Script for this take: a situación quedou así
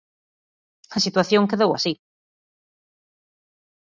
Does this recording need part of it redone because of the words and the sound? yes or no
no